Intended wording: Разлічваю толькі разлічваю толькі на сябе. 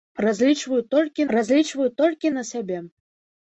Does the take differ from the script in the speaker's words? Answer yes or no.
no